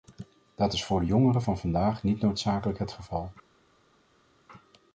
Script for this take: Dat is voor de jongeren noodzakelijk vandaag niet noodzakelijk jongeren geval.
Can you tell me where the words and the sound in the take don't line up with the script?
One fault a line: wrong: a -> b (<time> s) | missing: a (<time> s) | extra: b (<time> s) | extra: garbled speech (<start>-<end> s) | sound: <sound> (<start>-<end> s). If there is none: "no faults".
wrong: noodzakelijk -> van (1.4 s)
wrong: jongeren -> het (2.8 s)